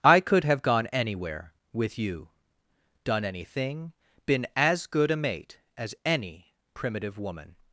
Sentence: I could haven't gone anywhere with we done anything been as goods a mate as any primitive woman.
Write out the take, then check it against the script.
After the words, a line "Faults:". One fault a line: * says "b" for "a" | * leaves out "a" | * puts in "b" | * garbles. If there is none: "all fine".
I could have gone anywhere with you done anything been as good a mate as any primitive woman.
Faults:
* says "have" for "haven't"
* says "you" for "we"
* says "good" for "goods"